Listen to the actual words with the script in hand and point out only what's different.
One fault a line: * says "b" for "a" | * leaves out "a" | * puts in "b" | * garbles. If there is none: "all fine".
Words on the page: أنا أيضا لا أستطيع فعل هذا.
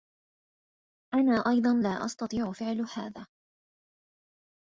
all fine